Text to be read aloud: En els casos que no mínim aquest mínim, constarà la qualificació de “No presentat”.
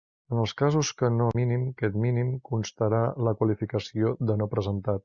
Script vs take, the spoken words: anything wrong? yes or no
no